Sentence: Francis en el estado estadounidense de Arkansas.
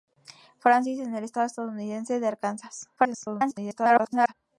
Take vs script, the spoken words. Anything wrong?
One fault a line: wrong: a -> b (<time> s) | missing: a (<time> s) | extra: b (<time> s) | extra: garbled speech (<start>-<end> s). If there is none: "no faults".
extra: garbled speech (3.0-4.3 s)